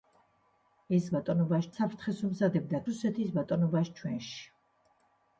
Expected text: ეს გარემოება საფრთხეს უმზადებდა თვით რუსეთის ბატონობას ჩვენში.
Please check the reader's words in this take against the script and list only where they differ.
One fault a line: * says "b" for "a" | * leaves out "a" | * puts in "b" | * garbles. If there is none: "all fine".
* says "ბატონობას" for "გარემოება"
* leaves out "თვით"